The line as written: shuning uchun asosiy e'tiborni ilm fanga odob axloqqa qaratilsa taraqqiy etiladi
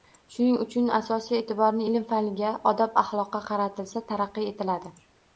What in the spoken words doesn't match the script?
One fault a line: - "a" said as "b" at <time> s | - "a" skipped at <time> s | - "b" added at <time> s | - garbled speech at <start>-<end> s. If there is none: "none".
none